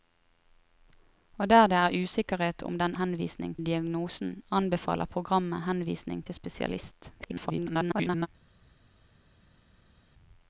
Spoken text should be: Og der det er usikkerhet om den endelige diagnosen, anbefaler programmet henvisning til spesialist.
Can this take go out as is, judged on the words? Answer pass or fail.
fail